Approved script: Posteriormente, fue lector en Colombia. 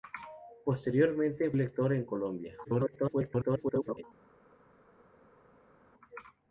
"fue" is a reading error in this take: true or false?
true